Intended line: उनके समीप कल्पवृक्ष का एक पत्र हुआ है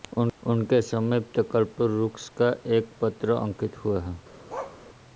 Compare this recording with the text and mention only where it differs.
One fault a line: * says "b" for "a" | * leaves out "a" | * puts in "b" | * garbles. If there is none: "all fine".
* puts in "अंकित"